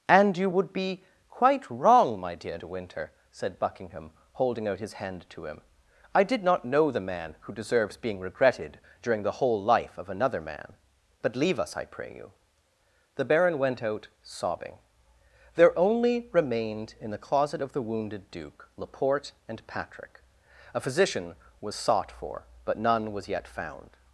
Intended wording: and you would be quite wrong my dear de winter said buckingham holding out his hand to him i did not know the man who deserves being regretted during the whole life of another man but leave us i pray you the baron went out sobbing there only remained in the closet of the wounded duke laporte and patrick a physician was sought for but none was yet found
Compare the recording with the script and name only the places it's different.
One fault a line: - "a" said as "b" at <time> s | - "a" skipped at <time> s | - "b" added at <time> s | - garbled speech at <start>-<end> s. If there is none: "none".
none